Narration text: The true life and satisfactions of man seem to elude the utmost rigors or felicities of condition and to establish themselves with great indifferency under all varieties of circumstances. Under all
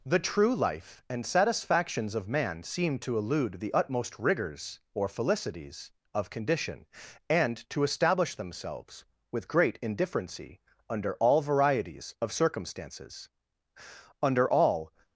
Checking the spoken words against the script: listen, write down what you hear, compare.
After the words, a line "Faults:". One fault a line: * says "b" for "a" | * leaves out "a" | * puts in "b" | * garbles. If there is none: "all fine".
The true life and satisfactions of man seem to elude the utmost rigors or felicities of condition and to establish themselves with great indifferency under all varieties of circumstances. Under all
Faults:
all fine